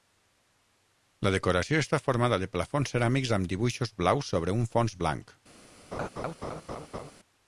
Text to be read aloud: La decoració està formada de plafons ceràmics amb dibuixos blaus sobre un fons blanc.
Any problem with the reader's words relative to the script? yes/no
no